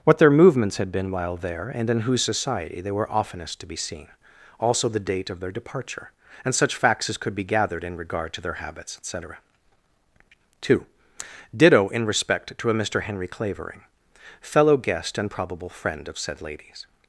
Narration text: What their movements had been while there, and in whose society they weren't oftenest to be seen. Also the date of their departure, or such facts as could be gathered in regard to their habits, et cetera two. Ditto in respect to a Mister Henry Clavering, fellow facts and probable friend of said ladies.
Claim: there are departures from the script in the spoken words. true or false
true